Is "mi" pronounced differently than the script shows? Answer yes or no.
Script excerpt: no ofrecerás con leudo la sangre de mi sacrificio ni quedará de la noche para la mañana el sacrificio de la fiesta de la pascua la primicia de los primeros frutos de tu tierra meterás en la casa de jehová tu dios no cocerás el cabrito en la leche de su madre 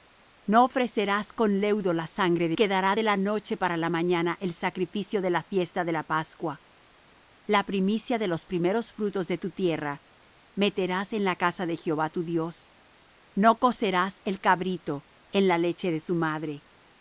yes